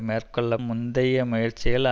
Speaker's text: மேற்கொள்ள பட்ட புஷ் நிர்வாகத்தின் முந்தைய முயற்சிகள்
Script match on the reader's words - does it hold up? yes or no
no